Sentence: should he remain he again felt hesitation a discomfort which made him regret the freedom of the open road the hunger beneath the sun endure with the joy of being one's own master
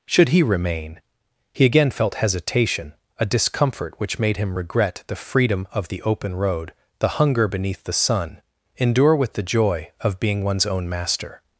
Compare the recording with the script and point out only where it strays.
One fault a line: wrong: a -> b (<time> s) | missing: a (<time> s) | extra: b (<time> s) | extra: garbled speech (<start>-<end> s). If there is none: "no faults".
no faults